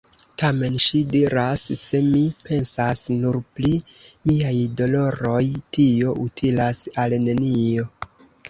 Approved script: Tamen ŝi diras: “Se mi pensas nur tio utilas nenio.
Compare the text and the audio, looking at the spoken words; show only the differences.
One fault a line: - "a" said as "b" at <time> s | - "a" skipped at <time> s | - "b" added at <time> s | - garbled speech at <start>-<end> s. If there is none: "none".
- "pri miaj doloroj" added at 3.6 s
- "al" added at 7.0 s